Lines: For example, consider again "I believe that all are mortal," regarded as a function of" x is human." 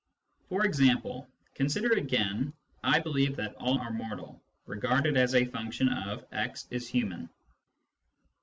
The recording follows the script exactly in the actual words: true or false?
true